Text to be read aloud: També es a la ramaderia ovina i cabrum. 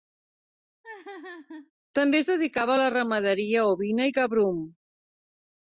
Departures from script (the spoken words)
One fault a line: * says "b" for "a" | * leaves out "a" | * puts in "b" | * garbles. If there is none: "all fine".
* puts in "dedicava"